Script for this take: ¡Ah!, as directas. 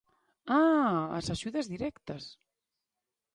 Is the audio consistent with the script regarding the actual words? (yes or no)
no